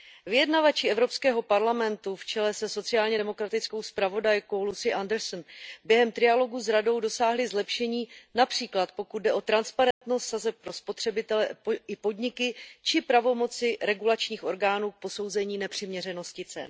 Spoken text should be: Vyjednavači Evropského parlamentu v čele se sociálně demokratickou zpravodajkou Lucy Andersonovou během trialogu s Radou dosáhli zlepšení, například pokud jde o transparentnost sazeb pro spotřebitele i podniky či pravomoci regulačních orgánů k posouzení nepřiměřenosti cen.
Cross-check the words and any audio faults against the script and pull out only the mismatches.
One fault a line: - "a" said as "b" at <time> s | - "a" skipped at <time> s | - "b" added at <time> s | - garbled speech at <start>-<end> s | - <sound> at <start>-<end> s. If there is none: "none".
- dropout at 9.9-10.0 s